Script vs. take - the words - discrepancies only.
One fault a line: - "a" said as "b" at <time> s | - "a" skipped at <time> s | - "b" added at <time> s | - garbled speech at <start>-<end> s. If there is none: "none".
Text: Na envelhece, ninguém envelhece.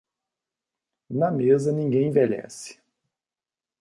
- "envelhece" said as "mesa" at 1.3 s